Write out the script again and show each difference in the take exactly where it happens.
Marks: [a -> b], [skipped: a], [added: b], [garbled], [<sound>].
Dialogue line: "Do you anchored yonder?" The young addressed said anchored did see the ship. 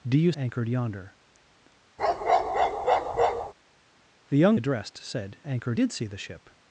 "Do you anchored yonder?" [bark] The young addressed said anchored did see the ship.